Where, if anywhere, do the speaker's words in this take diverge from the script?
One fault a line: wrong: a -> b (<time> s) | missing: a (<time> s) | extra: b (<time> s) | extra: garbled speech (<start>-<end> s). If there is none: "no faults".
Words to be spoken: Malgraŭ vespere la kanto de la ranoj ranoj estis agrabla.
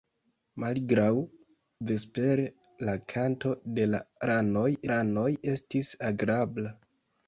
no faults